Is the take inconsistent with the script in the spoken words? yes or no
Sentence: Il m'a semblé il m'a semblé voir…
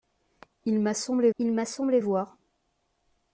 no